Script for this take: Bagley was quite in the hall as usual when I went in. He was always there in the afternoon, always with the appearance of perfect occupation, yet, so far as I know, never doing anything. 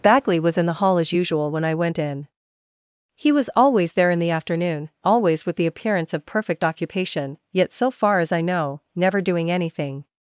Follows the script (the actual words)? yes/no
no